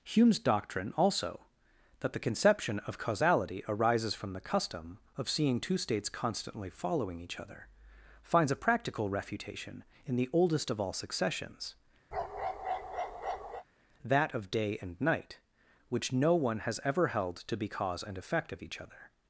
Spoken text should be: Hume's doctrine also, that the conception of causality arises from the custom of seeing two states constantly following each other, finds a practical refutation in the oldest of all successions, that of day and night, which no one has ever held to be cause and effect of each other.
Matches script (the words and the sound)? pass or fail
fail